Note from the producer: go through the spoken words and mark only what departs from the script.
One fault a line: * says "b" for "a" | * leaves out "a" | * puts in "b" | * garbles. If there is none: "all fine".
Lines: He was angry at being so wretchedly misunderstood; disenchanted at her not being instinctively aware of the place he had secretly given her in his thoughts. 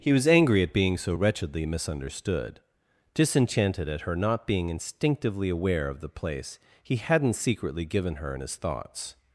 * says "hadn't" for "had"